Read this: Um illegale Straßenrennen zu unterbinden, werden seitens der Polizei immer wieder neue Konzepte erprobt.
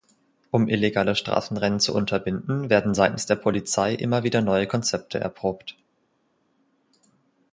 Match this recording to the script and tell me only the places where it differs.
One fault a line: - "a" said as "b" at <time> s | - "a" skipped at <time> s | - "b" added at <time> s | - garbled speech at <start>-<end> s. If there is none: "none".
none